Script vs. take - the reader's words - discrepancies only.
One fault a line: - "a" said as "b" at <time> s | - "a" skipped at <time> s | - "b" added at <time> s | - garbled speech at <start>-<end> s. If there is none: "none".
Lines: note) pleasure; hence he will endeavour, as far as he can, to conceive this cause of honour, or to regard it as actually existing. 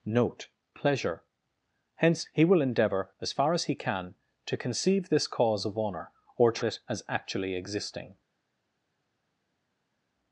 - "regard" skipped at 6.7 s